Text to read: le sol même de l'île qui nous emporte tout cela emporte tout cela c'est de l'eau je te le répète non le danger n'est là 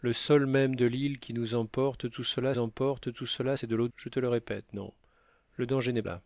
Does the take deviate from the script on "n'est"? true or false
false